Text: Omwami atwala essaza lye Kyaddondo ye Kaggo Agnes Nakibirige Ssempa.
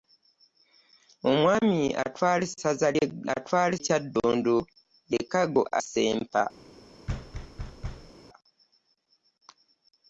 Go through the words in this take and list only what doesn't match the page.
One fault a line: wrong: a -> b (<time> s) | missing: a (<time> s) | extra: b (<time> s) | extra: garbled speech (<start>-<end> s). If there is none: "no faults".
wrong: lye -> atwala (3.4 s)
missing: Agnes Nakibirige (5.6 s)